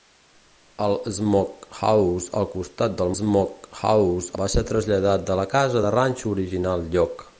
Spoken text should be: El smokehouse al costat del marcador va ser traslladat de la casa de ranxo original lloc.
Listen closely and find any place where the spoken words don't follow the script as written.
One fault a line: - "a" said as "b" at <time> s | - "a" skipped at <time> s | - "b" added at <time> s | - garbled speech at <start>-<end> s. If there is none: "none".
- "marcador" said as "smokehouse" at 3.2 s